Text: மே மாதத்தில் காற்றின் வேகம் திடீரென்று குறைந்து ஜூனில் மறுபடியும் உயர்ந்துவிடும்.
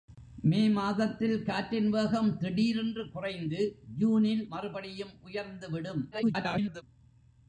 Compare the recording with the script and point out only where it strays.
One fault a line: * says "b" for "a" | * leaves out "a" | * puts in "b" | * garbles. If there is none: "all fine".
* garbles